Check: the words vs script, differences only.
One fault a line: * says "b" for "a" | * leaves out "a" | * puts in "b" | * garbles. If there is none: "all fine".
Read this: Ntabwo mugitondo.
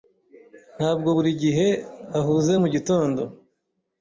* puts in "buri gihe ahuze"